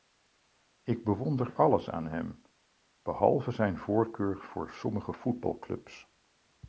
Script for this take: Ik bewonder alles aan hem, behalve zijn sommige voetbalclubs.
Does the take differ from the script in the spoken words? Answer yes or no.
yes